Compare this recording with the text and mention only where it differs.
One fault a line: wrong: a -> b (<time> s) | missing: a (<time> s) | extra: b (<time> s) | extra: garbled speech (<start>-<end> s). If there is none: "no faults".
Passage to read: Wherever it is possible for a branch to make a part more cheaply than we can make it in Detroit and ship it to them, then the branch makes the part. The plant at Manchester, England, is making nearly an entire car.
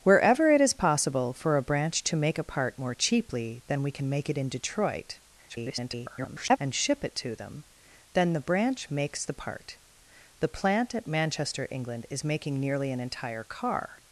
extra: garbled speech (5.5-6.6 s)